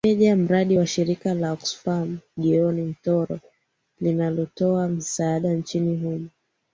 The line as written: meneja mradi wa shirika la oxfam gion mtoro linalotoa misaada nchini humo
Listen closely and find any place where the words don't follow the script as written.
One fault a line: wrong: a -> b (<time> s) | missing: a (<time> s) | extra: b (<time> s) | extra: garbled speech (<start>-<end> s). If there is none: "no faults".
no faults